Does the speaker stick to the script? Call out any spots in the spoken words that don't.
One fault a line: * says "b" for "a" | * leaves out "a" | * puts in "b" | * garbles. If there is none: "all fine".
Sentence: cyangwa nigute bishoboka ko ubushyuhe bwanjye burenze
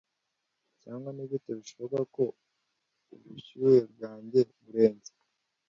all fine